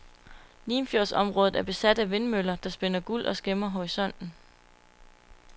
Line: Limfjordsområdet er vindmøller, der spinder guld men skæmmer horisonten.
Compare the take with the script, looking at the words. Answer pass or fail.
fail